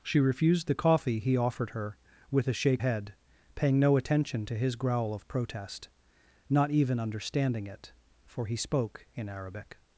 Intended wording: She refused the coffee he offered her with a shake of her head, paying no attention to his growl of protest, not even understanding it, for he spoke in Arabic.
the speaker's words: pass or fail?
fail